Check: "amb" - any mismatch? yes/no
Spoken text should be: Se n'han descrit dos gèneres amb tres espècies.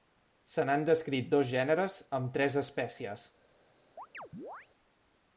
no